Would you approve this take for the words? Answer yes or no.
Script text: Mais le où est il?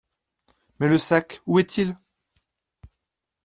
no